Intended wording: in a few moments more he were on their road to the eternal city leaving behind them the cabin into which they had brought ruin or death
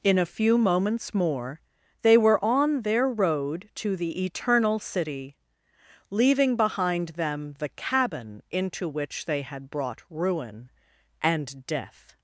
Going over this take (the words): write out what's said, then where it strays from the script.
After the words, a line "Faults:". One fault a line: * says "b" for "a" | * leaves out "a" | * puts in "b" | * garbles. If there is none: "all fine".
in a few moments more they were on their road to the eternal city leaving behind them the cabin into which they had brought ruin and death
Faults:
* says "they" for "he"
* says "and" for "or"